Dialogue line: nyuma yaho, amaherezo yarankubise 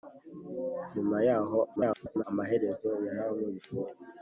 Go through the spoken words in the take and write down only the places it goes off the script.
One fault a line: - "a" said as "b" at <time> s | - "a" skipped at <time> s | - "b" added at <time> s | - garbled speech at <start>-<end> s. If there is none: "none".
- garbled speech at 1.8-2.2 s